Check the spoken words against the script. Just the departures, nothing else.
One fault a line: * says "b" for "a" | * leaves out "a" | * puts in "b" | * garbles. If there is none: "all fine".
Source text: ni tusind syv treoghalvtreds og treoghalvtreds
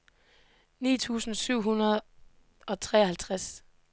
* says "hundrede" for "treoghalvtreds"